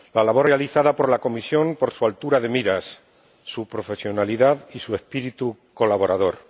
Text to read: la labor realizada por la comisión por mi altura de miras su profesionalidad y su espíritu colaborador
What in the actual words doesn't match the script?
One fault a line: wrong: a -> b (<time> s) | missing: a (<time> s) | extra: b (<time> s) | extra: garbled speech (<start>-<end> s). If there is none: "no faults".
wrong: mi -> su (1.9 s)